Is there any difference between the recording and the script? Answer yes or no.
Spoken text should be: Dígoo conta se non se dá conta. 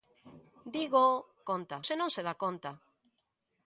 no